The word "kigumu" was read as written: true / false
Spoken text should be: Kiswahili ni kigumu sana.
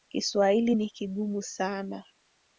true